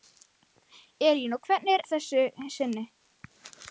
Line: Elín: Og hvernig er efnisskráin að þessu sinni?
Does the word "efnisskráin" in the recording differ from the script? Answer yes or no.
yes